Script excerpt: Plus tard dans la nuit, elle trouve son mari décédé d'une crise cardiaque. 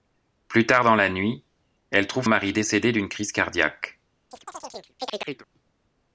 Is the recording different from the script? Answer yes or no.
yes